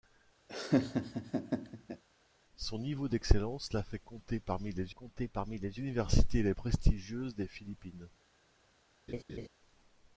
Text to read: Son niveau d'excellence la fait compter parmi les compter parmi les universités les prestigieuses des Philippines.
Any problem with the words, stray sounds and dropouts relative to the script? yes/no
yes